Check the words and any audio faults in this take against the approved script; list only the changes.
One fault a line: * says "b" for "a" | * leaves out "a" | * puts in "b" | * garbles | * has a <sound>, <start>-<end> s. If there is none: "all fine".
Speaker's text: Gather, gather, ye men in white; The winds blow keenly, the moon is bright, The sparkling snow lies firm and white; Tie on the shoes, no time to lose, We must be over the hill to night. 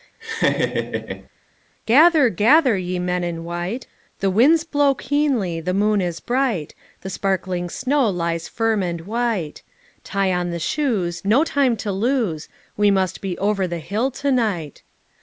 * has a laugh, 0.2-1.3 s